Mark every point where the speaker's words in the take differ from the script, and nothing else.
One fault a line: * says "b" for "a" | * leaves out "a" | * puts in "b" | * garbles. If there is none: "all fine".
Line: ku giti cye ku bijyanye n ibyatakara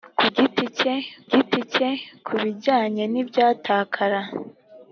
* puts in "giti cye"